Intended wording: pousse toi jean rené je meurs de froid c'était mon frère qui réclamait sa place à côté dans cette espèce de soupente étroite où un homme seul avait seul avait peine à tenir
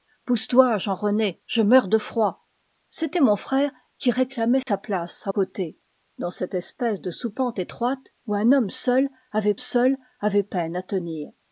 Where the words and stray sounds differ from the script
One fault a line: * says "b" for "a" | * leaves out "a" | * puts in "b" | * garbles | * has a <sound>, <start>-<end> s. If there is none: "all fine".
* has a dropout, 4.6-4.7 s